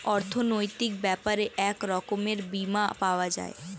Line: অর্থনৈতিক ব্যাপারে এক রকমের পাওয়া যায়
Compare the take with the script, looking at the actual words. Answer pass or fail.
fail